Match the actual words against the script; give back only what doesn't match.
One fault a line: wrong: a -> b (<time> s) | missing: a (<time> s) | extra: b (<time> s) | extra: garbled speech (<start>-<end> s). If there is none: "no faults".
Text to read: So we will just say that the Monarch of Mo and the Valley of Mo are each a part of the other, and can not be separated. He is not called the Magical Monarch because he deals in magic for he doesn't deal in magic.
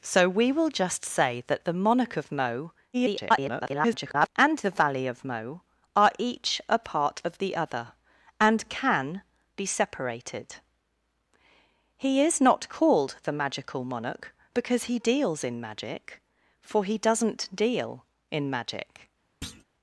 extra: garbled speech (2.9-4.3 s)
missing: not (9.2 s)